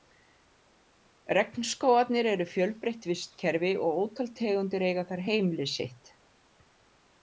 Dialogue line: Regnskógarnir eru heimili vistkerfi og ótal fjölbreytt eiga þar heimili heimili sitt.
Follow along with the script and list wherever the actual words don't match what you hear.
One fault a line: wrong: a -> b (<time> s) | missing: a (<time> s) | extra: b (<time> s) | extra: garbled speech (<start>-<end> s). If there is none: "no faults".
wrong: heimili -> fjölbreytt (2.5 s)
wrong: fjölbreytt -> tegundir (4.4 s)
missing: heimili (5.7 s)